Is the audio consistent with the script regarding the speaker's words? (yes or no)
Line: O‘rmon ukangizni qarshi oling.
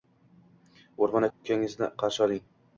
yes